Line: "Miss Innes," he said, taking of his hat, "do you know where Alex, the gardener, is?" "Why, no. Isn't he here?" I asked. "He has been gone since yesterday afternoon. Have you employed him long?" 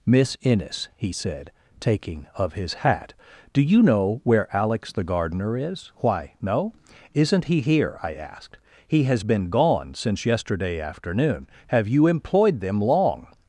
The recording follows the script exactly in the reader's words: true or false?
false